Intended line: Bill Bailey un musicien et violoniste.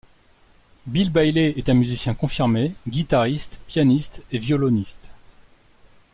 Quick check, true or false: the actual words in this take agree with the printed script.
false